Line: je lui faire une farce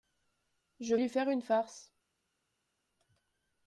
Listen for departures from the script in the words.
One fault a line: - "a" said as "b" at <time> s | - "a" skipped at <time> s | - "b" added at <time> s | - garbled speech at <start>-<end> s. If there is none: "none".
none